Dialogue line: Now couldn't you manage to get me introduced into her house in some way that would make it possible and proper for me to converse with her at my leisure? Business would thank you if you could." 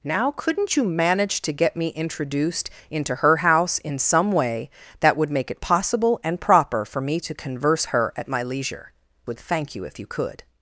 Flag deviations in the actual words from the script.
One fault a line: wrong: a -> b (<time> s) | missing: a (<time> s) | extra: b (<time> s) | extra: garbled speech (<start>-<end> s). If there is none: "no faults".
missing: with (7.9 s)
missing: Business (8.9 s)